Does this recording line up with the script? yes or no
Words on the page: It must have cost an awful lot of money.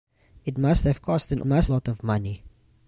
no